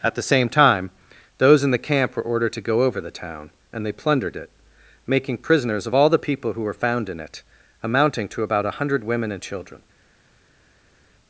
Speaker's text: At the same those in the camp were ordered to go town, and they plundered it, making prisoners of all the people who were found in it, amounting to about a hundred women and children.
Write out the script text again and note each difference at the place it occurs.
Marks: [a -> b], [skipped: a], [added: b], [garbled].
At the same [added: time] those in the camp were ordered to go [added: over the] town, and they plundered it, making prisoners of all the people who were found in it, amounting to about a hundred women and children.